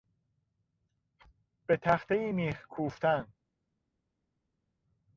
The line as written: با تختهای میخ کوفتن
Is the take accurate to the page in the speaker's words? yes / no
no